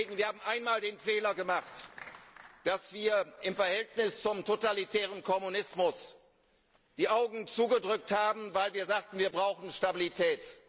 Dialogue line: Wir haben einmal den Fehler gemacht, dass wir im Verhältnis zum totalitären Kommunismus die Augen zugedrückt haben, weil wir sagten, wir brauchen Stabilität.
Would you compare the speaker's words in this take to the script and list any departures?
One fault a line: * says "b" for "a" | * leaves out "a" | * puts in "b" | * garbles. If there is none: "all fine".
all fine